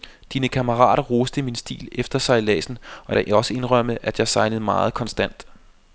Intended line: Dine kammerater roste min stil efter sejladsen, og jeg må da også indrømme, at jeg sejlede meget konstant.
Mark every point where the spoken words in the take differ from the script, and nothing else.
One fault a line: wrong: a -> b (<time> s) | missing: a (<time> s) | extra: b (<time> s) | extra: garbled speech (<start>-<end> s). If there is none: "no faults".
missing: jeg må (3.2 s)